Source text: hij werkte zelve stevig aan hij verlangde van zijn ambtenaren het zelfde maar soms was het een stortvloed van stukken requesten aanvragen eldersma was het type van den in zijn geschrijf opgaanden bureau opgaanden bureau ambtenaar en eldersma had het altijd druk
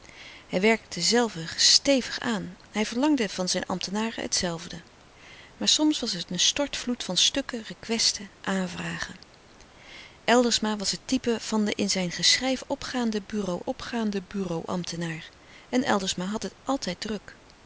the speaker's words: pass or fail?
pass